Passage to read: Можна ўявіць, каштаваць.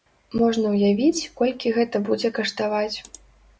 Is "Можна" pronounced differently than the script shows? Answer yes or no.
no